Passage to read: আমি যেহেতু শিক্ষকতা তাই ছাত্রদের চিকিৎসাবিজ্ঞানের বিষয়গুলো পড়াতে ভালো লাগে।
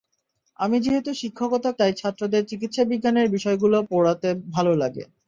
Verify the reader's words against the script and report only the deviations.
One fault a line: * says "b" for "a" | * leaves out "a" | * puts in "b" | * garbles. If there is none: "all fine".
all fine